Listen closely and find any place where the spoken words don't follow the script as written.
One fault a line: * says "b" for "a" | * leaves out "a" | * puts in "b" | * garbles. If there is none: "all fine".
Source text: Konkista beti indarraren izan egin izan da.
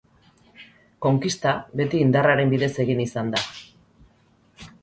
* says "bidez" for "izan"